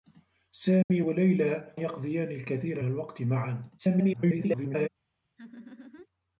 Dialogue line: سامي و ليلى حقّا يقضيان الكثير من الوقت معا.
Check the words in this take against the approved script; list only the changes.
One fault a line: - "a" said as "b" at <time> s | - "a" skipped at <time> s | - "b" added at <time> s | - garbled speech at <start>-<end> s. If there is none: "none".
- "حقّا" skipped at 1.8 s
- "من" skipped at 2.8 s
- garbled speech at 3.8-4.9 s